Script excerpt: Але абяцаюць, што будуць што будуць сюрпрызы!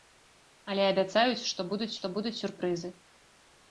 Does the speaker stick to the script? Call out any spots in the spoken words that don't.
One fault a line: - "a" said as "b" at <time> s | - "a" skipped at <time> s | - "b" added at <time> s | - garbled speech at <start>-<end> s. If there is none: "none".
none